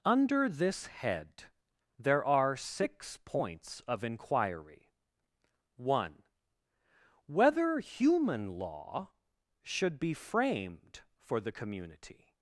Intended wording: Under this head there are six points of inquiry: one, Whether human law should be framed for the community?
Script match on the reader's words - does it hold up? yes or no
yes